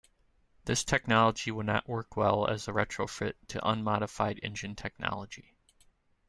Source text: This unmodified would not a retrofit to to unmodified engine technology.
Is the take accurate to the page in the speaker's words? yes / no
no